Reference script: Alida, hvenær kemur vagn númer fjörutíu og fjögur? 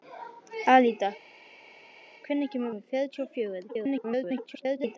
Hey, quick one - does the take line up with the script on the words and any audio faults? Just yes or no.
no